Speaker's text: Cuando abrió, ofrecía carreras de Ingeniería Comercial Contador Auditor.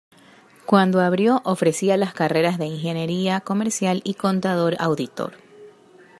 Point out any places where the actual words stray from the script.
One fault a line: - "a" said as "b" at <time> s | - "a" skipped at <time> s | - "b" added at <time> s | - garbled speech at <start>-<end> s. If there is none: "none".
- "las" added at 1.9 s
- "y" added at 4.0 s